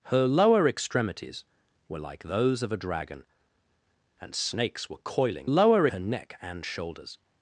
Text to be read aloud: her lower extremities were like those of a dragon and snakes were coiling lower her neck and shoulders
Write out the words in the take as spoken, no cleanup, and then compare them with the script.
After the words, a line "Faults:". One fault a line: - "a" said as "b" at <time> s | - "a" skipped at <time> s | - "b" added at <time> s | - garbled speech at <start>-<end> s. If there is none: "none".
her lower extremities were like those of a dragon and snakes were coiling lower her neck and shoulders
Faults:
none